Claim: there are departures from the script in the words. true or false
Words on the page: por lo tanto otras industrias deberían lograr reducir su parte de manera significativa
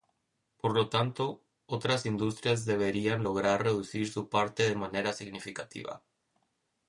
false